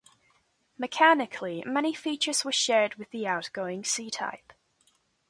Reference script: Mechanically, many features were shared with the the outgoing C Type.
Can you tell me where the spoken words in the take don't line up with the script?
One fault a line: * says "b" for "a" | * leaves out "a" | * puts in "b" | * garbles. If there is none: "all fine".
* leaves out "the"